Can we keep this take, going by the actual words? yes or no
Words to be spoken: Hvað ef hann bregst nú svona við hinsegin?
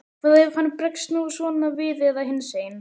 no